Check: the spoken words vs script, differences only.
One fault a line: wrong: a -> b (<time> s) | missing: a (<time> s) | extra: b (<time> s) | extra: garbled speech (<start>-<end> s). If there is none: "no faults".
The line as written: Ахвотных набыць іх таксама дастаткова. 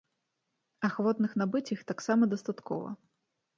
no faults